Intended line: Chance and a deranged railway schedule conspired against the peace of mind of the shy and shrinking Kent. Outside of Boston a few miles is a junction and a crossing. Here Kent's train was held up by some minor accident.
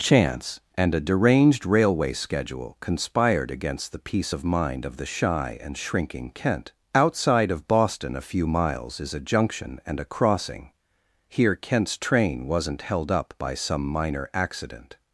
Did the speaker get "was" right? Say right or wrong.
wrong